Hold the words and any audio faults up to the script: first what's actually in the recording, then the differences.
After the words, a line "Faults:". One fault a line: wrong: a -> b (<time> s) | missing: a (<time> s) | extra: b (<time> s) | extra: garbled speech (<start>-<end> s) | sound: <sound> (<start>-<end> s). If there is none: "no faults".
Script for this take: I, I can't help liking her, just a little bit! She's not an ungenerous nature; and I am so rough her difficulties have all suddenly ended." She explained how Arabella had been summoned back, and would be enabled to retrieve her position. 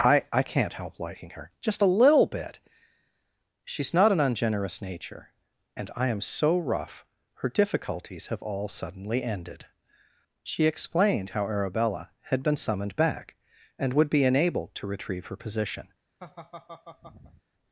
I, I can't help liking her, just a little bit! She's not an ungenerous nature; and I am so rough her difficulties have all suddenly ended." She explained how Arabella had been summoned back, and would be enabled to retrieve her position.
Faults:
sound: laugh (16.2-17.4 s)